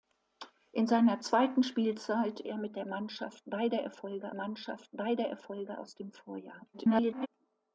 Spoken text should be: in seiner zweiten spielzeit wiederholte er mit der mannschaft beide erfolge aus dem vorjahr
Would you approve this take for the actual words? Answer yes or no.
no